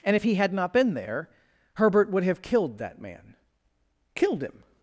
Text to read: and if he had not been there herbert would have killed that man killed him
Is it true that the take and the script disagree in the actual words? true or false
false